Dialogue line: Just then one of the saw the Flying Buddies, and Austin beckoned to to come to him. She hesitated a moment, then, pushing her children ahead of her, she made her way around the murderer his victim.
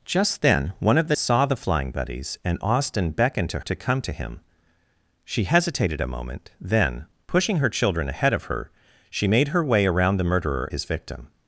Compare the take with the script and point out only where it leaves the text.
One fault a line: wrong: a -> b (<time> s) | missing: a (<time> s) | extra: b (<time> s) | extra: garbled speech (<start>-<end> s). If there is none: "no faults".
no faults